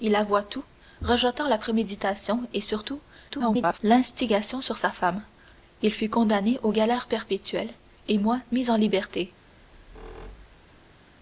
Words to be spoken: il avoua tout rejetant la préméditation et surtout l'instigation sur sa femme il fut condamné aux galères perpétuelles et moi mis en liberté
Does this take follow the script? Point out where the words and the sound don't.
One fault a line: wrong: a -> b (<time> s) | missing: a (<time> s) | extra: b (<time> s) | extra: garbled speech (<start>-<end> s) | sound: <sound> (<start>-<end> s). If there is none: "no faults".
extra: garbled speech (3.3-3.8 s)
sound: squeak (9.4-11.0 s)